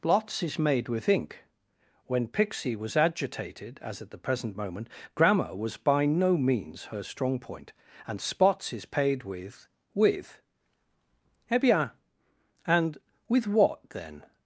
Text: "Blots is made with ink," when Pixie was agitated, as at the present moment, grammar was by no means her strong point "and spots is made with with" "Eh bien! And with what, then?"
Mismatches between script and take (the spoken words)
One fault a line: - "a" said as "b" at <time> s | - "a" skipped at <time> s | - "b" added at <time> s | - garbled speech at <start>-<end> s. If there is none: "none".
- "made" said as "paid" at 8.8 s